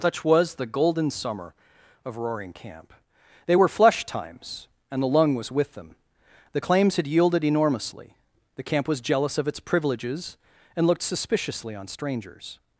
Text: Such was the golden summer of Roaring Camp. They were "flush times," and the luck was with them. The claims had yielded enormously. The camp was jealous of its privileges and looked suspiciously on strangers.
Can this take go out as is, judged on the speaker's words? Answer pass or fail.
fail